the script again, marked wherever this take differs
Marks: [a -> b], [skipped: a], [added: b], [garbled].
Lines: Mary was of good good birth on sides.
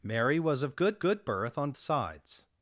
Mary was of good good birth on sides.